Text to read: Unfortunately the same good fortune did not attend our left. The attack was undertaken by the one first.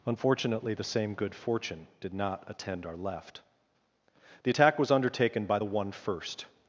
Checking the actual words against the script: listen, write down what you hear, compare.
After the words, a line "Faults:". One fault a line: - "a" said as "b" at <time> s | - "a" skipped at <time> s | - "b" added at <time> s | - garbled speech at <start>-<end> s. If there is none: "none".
Unfortunately the same good fortune did not attend our left. The attack was undertaken by the one first.
Faults:
none